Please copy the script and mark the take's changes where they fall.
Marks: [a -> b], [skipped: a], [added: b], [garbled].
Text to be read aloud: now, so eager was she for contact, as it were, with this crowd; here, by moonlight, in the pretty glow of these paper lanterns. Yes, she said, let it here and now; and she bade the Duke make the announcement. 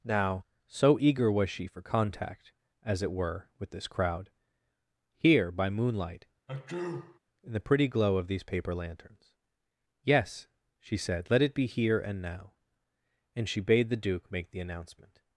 now, so eager was she for contact, as it were, with this crowd; here, by moonlight, in the pretty glow of these paper lanterns. Yes, she said, let it [added: be] here and now; and she bade the Duke make the announcement.